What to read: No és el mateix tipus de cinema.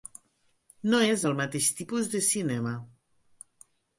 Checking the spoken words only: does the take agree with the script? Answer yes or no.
yes